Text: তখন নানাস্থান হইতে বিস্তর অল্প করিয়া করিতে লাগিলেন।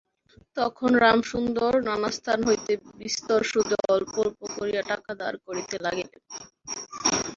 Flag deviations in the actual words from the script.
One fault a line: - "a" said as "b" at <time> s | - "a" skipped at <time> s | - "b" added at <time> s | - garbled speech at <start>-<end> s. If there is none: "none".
- "রামসুন্দর" added at 1.0 s
- "সুদে" added at 3.5 s
- "অল্প" added at 4.2 s
- "টাকা ধার" added at 4.9 s